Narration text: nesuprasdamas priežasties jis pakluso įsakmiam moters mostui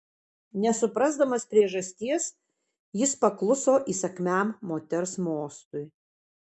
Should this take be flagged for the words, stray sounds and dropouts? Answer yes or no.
no